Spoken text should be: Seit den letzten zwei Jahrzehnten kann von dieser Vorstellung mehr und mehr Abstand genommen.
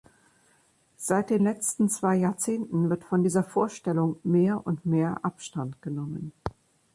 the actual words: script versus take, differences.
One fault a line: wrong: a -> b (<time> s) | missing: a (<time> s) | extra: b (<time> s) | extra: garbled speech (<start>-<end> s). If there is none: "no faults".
wrong: kann -> wird (2.9 s)